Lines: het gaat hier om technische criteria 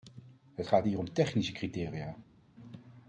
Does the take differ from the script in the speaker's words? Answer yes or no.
no